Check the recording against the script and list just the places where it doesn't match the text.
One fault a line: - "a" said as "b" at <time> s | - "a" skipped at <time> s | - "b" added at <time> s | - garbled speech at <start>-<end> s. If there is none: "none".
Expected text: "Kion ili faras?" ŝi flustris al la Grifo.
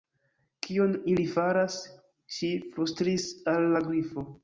none